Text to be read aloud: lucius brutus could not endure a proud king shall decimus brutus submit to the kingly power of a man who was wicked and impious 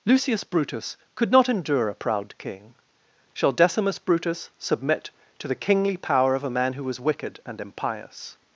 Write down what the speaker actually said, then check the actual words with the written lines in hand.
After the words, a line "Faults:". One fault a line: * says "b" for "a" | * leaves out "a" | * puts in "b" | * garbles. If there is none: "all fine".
lucius brutus could not endure a proud king shall decimus brutus submit to the kingly power of a man who was wicked and impious
Faults:
all fine